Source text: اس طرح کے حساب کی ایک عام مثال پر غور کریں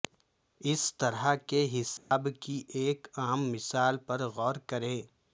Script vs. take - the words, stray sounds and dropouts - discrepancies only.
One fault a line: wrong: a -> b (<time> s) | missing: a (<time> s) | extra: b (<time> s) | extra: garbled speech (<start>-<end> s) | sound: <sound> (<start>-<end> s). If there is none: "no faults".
sound: dropout (2.0-2.1 s)